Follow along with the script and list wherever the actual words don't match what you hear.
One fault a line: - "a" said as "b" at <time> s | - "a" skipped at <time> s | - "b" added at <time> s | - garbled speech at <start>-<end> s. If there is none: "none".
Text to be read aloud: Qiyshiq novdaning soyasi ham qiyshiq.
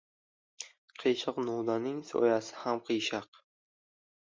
none